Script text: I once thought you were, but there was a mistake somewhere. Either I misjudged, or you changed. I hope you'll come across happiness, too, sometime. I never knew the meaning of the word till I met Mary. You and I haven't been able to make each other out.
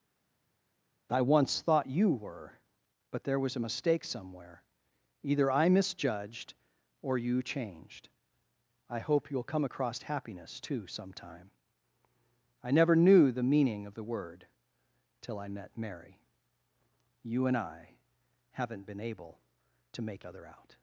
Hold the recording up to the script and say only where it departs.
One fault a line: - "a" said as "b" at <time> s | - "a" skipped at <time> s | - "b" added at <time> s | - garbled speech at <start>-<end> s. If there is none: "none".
- "each" skipped at 20.3 s